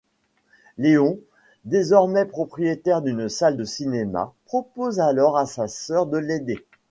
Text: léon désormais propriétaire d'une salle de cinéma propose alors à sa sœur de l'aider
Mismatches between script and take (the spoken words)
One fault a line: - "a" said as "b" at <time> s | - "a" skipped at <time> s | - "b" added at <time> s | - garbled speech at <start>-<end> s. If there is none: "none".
none